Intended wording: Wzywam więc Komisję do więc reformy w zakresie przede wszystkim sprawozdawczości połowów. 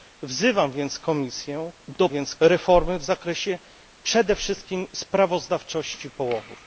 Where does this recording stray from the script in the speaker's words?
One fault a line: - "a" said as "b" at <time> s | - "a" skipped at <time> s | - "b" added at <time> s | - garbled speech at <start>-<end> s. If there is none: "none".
none